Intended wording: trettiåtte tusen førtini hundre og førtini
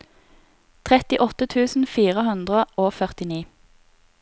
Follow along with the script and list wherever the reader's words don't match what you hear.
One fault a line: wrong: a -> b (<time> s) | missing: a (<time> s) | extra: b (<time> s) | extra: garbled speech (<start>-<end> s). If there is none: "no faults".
wrong: førtini -> fire (2.0 s)